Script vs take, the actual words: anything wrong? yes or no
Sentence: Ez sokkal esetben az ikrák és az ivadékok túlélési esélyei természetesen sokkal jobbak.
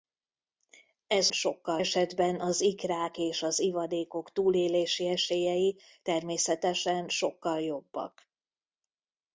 no